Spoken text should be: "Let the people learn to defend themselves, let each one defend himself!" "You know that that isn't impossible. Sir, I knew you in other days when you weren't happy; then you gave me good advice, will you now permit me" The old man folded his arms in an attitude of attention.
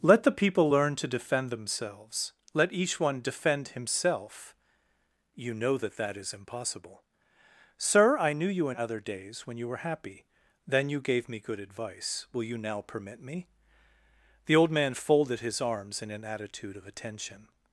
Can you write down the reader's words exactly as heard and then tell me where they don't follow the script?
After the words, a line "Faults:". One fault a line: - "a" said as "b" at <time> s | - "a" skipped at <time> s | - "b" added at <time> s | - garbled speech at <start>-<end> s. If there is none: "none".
"Let the people learn to defend themselves, let each one defend himself!" "You know that that is impossible. Sir, I knew you in other days when you were happy; then you gave me good advice, will you now permit me" The old man folded his arms in an attitude of attention.
Faults:
- "isn't" said as "is" at 6.2 s
- "weren't" said as "were" at 9.7 s